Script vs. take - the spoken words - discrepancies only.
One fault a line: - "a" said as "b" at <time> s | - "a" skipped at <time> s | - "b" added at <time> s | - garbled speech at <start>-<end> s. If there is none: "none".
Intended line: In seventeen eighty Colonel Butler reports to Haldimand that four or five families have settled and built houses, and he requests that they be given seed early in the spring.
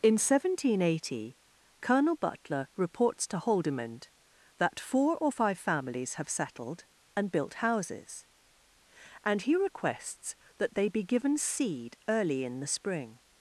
none